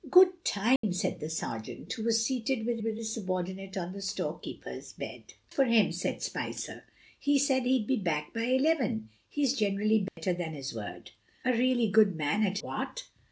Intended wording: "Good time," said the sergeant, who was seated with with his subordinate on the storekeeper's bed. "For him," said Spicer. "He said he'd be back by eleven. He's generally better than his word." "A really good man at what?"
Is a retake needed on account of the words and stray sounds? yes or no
yes